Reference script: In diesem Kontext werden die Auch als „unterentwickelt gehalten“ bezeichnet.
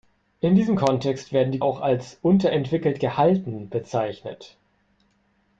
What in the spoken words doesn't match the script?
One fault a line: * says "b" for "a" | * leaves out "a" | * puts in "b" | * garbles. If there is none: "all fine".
all fine